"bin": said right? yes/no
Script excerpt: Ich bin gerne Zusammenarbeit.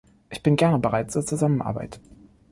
yes